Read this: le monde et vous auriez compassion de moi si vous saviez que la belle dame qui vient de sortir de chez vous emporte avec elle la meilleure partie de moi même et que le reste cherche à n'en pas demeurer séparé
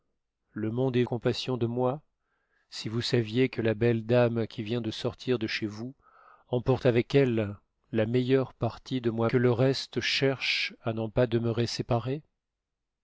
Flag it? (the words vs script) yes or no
yes